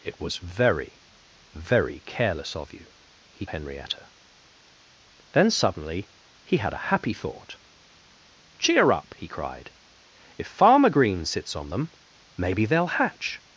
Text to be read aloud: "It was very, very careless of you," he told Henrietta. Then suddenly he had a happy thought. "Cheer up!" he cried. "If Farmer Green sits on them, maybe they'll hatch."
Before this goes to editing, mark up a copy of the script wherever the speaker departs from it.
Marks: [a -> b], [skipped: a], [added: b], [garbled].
"It was very, very careless of you," he [skipped: told] Henrietta. Then suddenly he had a happy thought. "Cheer up!" he cried. "If Farmer Green sits on them, maybe they'll hatch."